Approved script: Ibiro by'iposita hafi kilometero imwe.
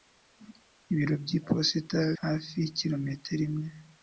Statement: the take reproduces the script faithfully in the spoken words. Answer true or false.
true